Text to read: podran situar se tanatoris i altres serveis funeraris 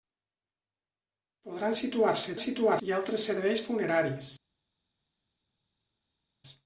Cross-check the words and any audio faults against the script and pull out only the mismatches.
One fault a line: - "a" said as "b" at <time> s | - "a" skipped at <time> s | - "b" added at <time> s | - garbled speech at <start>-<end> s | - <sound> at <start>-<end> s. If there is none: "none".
- "tanatoris" said as "situar" at 2.4 s